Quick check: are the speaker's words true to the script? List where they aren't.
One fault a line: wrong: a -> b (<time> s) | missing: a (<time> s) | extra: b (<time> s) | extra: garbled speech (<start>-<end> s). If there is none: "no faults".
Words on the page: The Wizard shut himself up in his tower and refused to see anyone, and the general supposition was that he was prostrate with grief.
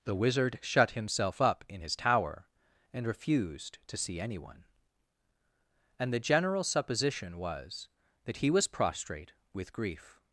no faults